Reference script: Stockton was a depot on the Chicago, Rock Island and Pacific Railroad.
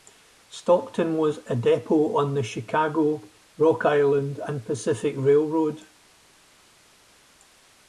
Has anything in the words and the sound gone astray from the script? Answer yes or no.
no